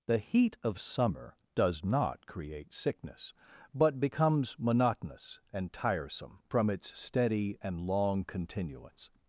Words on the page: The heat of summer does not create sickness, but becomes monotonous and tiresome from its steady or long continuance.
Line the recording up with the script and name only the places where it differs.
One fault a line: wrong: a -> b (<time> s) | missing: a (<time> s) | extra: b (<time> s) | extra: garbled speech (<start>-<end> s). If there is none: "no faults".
wrong: or -> and (7.6 s)